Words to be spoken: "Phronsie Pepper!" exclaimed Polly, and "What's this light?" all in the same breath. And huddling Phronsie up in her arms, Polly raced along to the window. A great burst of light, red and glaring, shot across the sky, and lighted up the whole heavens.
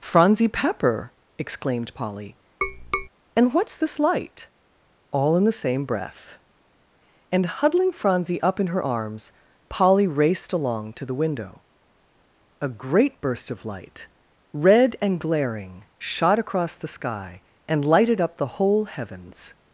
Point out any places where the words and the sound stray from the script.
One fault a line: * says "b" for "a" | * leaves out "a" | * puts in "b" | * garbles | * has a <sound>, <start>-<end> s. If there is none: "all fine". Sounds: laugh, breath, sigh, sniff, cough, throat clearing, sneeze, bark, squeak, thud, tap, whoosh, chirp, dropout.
* has a tap, 2.6-3.1 s